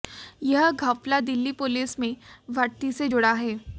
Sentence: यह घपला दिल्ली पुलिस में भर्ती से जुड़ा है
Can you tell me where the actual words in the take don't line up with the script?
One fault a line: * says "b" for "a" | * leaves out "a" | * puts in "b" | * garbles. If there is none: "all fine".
all fine